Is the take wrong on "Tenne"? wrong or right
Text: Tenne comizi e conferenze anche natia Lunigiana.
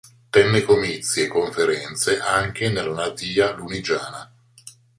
right